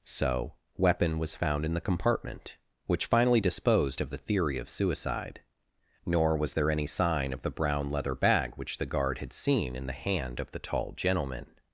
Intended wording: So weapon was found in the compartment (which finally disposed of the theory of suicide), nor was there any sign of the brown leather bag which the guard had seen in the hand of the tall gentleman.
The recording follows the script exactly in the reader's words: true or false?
true